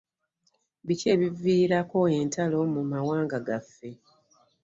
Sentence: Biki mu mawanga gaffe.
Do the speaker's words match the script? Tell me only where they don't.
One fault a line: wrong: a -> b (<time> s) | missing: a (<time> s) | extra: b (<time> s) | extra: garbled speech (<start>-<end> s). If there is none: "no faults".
extra: ebiviirako entalo (1.1 s)